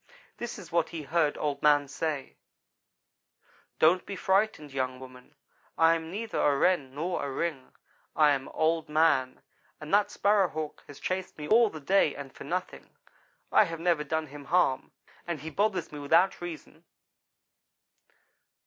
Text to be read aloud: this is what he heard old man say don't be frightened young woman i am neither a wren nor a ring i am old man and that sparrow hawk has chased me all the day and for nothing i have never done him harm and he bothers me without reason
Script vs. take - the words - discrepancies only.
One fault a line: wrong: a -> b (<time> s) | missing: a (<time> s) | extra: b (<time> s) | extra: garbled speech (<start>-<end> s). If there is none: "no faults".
no faults